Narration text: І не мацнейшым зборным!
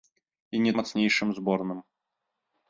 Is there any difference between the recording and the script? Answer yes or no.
no